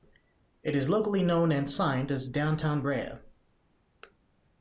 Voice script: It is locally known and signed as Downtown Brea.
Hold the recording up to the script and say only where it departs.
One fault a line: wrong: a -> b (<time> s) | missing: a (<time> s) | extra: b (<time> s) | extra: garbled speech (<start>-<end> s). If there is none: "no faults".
no faults